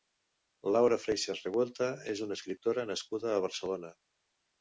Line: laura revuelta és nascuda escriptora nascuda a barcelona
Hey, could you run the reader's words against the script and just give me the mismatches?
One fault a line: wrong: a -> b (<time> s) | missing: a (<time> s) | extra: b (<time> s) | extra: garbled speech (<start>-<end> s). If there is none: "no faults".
extra: freixas (1.0 s)
wrong: nascuda -> una (2.3 s)